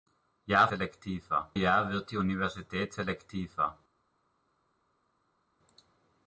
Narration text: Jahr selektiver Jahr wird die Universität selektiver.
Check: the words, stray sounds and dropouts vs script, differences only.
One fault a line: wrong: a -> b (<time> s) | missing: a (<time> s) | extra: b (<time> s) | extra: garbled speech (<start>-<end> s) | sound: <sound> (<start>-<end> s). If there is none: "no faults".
no faults